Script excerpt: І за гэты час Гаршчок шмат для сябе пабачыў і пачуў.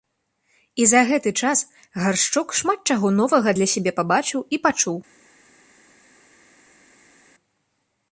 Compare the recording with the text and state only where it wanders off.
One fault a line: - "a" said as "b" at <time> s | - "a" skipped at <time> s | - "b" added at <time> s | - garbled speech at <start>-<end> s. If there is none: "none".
- "чаго новага" added at 2.9 s